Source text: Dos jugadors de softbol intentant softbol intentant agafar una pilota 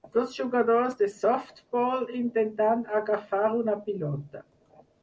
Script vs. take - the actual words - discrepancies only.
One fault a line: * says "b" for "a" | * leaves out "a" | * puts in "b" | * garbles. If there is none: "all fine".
* leaves out "softbol intentant"